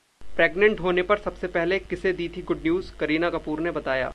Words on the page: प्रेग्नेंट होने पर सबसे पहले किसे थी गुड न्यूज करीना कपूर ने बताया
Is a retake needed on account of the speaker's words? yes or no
yes